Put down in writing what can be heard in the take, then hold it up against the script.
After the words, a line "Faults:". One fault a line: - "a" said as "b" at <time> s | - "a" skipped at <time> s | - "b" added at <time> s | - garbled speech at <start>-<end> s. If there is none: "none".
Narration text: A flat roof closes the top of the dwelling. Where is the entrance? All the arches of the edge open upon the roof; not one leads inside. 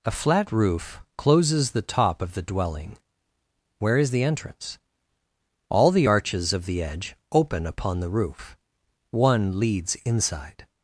A flat roof closes the top of the dwelling. Where is the entrance? All the arches of the edge open upon the roof; one leads inside.
Faults:
- "not" skipped at 8.6 s